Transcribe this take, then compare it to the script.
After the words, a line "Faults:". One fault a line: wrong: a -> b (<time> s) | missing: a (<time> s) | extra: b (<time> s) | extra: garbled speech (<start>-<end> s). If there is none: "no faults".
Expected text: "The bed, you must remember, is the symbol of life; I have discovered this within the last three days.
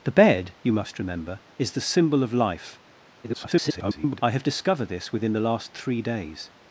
"The bed, you must remember, is the symbol of life; [garbled] I have discovered this within the last three days.
Faults:
extra: garbled speech (3.2-4.2 s)